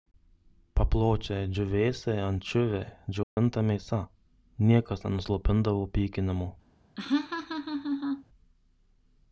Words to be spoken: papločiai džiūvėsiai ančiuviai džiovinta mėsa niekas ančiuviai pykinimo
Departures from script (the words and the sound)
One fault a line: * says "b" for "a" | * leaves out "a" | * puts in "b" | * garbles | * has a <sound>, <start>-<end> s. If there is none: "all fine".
* has a dropout, 3.2-3.4 s
* says "nenuslopindavo" for "ančiuviai"
* has a laugh, 7.0-8.2 s